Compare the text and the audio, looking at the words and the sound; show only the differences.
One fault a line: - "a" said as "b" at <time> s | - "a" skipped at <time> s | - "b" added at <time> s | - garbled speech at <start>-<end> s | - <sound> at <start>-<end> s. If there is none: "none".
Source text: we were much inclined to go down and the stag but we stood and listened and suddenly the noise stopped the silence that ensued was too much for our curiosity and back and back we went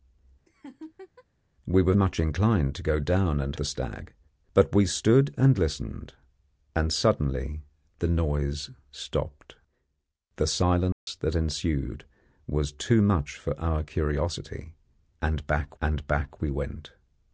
- laugh at 0.5-1.2 s
- dropout at 10.9-11.1 s